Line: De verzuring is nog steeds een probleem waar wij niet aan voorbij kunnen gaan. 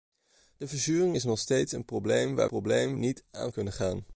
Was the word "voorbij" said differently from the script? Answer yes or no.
yes